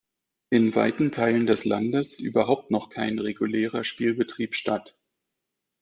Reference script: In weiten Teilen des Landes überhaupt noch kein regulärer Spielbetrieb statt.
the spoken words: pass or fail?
pass